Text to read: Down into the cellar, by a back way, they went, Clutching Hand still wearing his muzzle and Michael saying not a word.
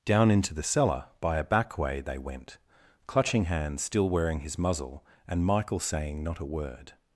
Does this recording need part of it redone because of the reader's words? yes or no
no